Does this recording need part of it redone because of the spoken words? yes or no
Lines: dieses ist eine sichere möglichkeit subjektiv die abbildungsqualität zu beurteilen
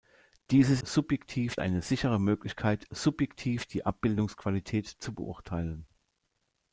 yes